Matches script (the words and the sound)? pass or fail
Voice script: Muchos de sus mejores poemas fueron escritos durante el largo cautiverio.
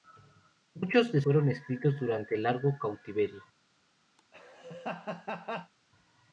fail